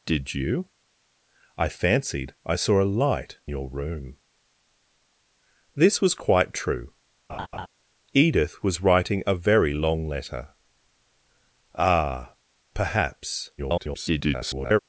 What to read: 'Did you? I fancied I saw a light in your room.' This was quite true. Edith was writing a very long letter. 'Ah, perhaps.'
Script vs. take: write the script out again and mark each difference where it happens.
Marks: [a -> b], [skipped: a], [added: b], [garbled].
'Did you? I fancied I saw a light [skipped: in] your room.' This was quite true. Edith was writing a very long letter. 'Ah, perhaps.' [garbled]